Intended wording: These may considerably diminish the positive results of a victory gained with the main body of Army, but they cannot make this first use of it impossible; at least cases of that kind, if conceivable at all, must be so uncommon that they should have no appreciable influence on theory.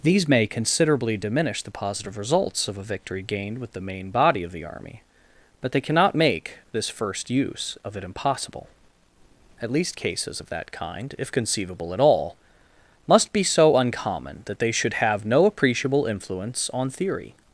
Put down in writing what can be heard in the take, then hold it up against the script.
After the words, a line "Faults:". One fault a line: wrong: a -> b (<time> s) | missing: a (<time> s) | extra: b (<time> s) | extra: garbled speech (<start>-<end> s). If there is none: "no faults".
These may considerably diminish the positive results of a victory gained with the main body of the Army, but they cannot make this first use of it impossible; at least cases of that kind, if conceivable at all, must be so uncommon that they should have no appreciable influence on theory.
Faults:
extra: the (4.5 s)